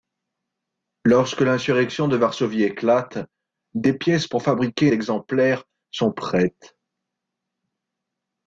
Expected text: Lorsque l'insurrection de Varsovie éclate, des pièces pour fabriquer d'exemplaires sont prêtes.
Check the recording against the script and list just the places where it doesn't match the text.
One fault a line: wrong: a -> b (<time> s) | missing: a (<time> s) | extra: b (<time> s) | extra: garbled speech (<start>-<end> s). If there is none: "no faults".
no faults